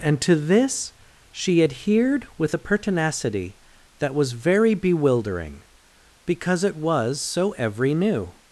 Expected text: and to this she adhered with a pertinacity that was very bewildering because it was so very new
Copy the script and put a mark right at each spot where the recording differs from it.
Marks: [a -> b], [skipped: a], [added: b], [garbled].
and to this she adhered with a pertinacity that was very bewildering because it was so [very -> every] new